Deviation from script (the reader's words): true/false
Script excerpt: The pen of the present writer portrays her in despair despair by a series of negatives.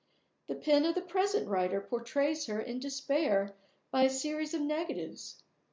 true